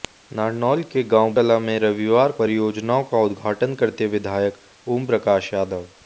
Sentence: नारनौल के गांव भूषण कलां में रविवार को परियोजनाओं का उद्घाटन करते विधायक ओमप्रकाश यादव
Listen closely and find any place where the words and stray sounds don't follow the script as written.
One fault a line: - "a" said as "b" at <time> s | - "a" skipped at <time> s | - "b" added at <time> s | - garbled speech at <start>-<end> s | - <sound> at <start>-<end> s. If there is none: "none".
- "भूषण" skipped at 1.3 s
- "को" skipped at 2.3 s